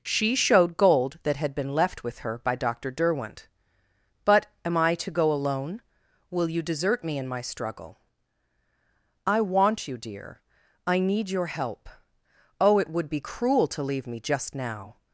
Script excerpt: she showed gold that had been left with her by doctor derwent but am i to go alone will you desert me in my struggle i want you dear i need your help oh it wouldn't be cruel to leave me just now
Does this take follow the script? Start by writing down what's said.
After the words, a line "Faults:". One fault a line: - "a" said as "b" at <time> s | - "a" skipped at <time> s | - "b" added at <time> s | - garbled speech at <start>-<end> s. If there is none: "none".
she showed gold that had been left with her by doctor derwent but am i to go alone will you desert me in my struggle i want you dear i need your help oh it would be cruel to leave me just now
Faults:
- "wouldn't" said as "would" at 12.9 s